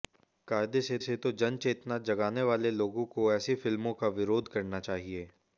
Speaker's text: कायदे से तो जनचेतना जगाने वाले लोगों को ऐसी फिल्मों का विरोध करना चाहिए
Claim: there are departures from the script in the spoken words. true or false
true